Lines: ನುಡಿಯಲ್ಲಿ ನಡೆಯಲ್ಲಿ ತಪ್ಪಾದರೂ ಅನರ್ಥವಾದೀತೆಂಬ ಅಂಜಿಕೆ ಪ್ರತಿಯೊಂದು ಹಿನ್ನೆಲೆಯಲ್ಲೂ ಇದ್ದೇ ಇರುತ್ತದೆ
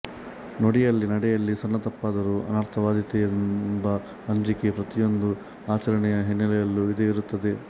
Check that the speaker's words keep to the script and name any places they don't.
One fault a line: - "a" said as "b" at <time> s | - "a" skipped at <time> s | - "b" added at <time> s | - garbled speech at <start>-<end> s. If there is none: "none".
- "ಸಣ್ಣ" added at 1.6 s
- "ಆಚರಣೆಯ" added at 5.7 s